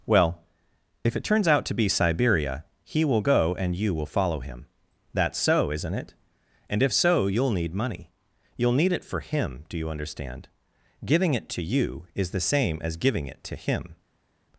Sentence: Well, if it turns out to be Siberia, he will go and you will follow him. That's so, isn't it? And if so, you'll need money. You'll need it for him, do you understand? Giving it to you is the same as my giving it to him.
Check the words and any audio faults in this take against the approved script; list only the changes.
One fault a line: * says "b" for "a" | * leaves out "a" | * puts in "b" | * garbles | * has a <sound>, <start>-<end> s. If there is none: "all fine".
* leaves out "my"